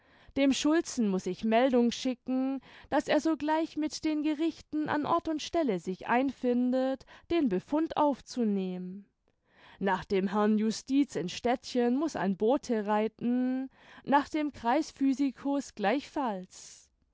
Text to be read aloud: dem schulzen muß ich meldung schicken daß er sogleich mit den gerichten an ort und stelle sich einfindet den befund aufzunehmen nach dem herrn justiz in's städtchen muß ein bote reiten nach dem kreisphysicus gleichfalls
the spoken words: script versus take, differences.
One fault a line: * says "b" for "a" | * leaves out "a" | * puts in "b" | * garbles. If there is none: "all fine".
all fine